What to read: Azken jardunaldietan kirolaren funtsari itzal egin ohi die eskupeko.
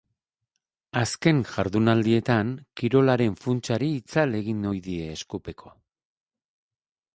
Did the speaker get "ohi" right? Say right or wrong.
right